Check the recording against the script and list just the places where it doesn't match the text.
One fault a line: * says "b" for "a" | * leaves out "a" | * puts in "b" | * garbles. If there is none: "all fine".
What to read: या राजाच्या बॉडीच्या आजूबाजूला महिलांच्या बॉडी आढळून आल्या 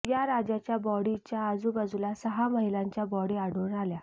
* puts in "सहा"